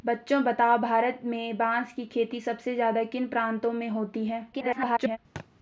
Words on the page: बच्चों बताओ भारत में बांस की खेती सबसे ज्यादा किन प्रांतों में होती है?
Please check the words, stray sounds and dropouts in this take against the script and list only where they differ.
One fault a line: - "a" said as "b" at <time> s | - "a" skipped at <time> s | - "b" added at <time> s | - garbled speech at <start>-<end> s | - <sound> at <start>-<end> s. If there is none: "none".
- garbled speech at 4.5-5.2 s
- thud at 5.4-5.5 s